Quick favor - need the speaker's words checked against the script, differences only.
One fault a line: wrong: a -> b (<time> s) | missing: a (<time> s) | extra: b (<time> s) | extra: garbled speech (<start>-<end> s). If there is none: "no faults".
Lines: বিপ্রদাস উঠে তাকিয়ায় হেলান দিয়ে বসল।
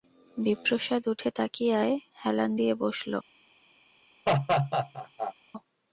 no faults